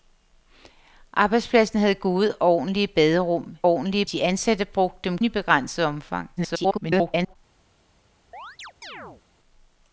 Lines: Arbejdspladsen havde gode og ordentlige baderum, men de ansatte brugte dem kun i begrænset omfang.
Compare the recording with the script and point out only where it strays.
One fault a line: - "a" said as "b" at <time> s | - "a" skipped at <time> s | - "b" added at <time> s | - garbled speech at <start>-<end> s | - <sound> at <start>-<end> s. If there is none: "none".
- "men" said as "ordentlige" at 3.7 s
- "kun" skipped at 5.2 s
- garbled speech at 6.4-7.4 s
- chirp at 8.3-9.2 s